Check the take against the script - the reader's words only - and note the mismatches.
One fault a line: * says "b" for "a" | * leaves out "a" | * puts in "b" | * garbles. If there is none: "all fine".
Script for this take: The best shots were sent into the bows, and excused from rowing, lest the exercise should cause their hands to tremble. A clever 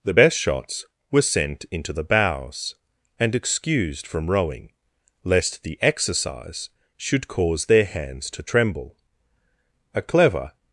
all fine